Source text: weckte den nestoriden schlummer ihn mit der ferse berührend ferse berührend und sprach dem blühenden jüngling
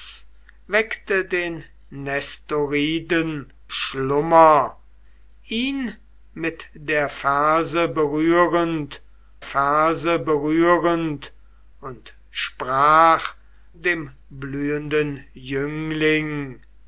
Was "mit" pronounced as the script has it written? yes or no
yes